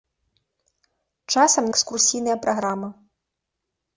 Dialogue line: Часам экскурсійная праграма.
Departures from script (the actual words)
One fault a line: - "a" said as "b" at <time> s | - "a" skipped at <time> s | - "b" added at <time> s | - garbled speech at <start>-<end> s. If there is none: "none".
none